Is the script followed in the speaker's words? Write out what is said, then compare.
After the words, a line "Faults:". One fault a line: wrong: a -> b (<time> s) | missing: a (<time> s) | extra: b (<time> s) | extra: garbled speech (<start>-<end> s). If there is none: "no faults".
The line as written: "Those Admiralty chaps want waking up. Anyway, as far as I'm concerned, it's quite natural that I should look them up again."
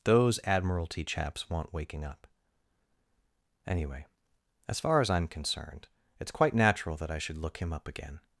"Those Admiralty chaps want waking up. Anyway, as far as I'm concerned, it's quite natural that I should look him up again."
Faults:
wrong: them -> him (7.6 s)